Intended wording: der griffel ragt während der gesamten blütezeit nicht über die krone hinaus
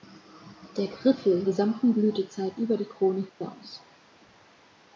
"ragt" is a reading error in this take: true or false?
true